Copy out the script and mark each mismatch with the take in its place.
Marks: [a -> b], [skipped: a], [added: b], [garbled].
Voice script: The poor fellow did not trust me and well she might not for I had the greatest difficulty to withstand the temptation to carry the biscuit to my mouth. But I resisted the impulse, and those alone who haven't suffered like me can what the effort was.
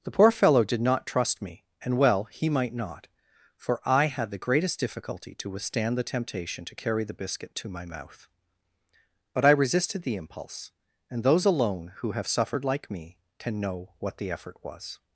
The poor fellow did not trust me and well [she -> he] might not for I had the greatest difficulty to withstand the temptation to carry the biscuit to my mouth. But I resisted the impulse, and those alone who [haven't -> have] suffered like me can [added: know] what the effort was.